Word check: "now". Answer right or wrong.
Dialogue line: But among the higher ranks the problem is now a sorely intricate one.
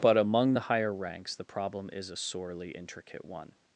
wrong